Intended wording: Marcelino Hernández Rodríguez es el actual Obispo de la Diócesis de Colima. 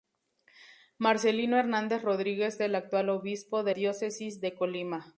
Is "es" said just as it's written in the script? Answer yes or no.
no